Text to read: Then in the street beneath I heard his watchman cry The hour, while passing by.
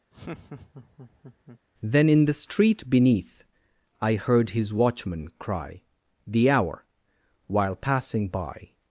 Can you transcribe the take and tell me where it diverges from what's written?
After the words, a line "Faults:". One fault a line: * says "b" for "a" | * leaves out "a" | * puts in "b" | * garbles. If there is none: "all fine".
Then in the street beneath I heard his watchman cry The hour, while passing by.
Faults:
all fine